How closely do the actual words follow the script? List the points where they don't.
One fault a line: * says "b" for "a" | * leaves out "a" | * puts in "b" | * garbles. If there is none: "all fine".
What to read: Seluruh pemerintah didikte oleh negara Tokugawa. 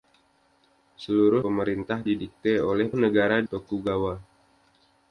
all fine